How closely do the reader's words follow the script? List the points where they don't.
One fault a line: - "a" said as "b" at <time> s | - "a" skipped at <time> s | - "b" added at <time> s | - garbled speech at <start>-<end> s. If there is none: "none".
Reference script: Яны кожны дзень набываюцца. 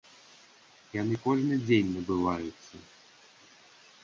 none